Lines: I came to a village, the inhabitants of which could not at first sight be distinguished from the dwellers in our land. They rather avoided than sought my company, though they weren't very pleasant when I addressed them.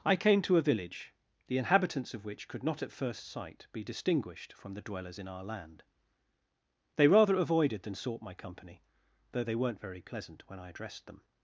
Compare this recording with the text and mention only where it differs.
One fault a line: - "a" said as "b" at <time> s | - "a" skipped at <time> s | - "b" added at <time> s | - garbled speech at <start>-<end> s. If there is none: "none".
none